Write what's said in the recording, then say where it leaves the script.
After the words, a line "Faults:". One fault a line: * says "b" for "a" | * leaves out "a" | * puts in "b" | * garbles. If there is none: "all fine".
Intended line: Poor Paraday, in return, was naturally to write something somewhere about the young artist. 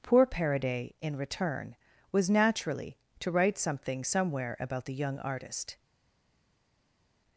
Poor Paraday, in return, was naturally to write something somewhere about the young artist.
Faults:
all fine